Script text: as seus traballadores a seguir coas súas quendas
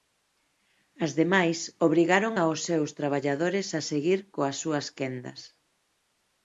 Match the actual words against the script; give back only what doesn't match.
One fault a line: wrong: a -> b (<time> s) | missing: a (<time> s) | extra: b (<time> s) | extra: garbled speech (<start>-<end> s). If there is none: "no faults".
extra: demais obrigaron aos (1.2 s)